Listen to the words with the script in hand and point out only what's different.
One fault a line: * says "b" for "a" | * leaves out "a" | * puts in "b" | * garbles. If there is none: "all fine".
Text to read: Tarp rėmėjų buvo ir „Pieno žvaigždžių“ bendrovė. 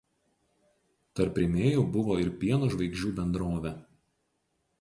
all fine